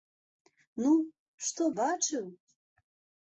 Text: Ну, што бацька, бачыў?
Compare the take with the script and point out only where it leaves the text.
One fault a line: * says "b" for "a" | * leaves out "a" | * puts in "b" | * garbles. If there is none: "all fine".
* leaves out "бацька"